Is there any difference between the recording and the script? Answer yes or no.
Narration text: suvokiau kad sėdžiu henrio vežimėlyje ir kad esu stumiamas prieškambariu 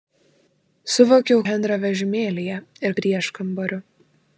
yes